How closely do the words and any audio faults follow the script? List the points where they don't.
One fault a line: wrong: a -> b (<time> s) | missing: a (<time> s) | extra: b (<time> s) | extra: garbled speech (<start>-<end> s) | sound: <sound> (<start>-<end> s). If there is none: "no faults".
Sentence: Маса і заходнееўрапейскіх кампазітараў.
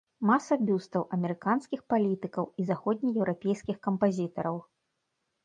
extra: бюстаў амерыканскіх палітыкаў (0.7 s)